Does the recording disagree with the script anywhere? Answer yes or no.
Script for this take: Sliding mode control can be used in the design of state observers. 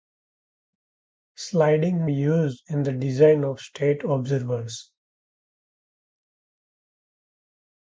yes